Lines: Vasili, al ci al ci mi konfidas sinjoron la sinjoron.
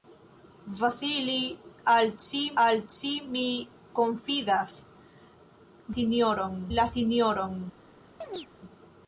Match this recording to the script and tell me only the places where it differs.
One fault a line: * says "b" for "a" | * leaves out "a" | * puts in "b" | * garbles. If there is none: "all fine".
all fine